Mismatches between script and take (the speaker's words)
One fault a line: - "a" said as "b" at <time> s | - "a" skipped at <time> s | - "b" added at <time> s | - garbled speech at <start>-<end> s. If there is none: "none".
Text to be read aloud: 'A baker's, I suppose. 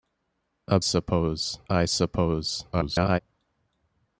- "baker's" said as "suppose" at 0.8 s
- garbled speech at 2.7-3.2 s